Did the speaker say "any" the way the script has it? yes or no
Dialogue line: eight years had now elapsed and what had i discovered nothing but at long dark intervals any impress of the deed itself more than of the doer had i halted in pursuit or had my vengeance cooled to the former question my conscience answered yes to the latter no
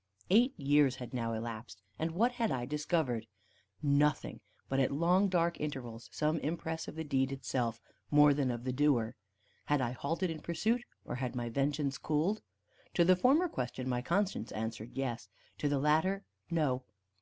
no